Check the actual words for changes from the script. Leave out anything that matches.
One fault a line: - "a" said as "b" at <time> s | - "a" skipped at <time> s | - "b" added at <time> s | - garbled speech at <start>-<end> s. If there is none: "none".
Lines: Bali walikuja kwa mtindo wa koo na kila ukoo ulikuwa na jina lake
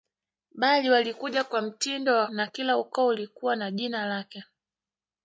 - "koo" skipped at 2.3 s